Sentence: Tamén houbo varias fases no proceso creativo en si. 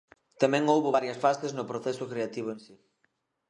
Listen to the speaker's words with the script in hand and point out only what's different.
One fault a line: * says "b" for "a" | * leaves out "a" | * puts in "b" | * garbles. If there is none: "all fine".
all fine